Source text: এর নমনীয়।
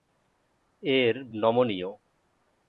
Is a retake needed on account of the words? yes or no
no